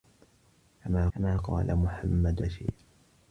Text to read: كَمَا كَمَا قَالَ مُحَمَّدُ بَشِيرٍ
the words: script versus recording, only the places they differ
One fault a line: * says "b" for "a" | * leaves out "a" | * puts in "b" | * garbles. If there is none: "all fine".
all fine